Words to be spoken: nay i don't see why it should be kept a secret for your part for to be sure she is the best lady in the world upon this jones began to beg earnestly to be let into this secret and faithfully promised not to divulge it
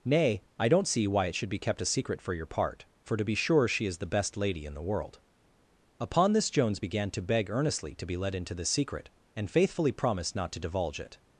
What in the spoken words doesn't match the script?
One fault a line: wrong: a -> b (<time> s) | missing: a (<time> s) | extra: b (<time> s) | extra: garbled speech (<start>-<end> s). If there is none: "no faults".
no faults